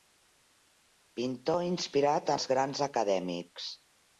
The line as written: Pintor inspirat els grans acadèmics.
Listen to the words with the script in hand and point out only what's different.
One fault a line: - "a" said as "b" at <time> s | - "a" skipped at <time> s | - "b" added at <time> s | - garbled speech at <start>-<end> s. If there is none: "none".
none